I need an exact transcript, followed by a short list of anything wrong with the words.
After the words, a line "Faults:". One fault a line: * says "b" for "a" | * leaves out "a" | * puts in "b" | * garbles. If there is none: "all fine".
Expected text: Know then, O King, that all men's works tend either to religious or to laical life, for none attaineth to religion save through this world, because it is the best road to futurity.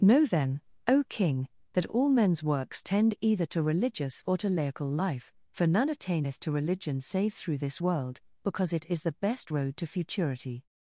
Know then, O King, that all men's works tend either to religious or to laical life, for none attaineth to religion save through this world, because it is the best road to futurity.
Faults:
all fine